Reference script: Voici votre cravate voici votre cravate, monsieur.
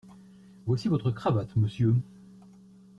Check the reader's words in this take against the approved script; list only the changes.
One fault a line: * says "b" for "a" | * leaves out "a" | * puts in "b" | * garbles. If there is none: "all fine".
* leaves out "voici votre cravate"